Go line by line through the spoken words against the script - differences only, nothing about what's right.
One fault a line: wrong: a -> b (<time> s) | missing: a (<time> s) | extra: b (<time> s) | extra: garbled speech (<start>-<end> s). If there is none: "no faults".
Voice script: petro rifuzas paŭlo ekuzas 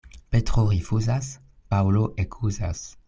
no faults